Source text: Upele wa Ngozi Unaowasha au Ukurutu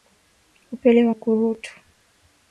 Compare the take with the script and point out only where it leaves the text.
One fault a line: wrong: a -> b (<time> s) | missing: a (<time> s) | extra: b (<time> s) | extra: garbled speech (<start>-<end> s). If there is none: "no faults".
missing: Ngozi Unaowasha au (1.1 s)